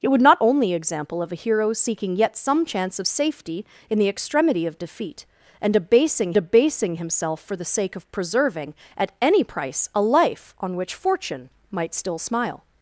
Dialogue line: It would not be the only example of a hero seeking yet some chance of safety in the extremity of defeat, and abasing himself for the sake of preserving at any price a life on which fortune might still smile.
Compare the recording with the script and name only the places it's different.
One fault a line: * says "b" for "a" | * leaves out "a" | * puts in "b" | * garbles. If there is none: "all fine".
* leaves out "be the"
* puts in "abasing"